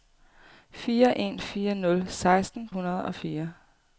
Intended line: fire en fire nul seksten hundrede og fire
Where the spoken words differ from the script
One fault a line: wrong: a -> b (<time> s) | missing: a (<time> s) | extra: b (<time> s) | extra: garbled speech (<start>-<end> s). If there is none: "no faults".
no faults